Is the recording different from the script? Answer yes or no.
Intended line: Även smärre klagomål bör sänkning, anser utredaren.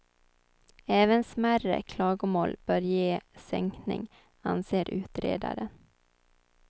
yes